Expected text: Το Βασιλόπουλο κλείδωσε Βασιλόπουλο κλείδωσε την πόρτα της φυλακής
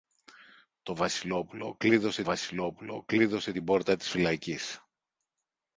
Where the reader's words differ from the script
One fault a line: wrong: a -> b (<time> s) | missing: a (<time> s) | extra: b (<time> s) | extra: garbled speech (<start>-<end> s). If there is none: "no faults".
no faults